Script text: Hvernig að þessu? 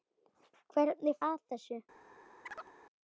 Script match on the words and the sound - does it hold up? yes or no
no